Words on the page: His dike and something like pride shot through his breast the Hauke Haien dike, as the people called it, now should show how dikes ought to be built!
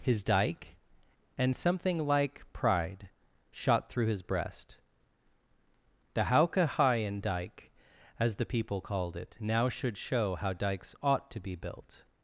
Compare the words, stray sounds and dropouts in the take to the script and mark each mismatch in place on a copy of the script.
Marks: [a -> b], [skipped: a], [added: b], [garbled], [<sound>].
His dike and something like pride shot through his breast the Hauke Haien dike, as the people called it, now should show how dikes ought to be built!